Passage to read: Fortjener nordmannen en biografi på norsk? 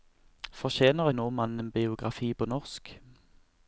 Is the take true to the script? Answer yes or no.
yes